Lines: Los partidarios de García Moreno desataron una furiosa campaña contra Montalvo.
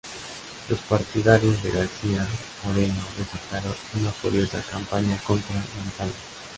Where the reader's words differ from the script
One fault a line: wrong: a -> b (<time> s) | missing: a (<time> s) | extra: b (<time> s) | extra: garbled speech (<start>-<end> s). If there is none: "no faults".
no faults